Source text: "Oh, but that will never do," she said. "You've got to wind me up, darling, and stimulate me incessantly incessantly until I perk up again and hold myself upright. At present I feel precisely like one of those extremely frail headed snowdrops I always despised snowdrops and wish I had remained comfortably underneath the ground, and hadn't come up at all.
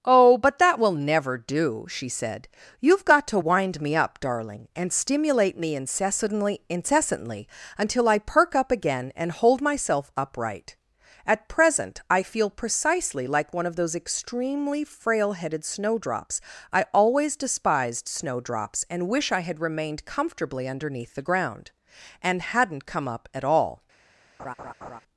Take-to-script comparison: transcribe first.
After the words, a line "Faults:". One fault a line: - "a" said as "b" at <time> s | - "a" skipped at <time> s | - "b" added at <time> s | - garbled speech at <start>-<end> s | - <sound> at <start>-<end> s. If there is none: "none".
"Oh, but that will never do," she said. "You've got to wind me up, darling, and stimulate me incessantly incessantly until I perk up again and hold myself upright. At present I feel precisely like one of those extremely frail headed snowdrops I always despised snowdrops and wish I had remained comfortably underneath the ground, and hadn't come up at all.
Faults:
- laugh at 24.4-25.0 s